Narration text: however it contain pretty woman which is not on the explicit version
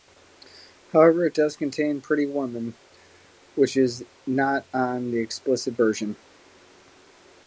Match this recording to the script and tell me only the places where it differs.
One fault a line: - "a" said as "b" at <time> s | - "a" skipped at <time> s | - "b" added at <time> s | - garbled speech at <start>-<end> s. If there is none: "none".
- "does" added at 1.4 s